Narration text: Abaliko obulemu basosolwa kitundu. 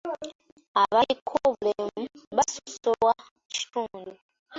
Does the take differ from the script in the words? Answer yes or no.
no